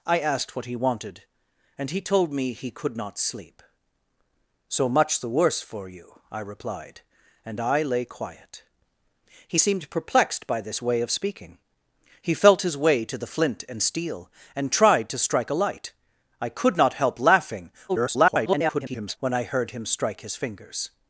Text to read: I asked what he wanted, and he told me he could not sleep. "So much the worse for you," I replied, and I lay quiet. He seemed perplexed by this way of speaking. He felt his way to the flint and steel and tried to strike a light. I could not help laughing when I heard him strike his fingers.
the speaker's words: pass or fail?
fail